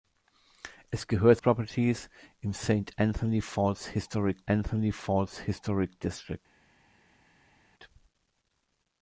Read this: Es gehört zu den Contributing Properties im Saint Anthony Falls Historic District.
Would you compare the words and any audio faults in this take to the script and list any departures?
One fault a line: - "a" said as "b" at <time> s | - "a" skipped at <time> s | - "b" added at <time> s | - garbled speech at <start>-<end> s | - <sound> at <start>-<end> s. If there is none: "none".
- "zu den Contributing Properties im Saint" said as "Properties im Saint Anthony Falls Historic" at 1.4 s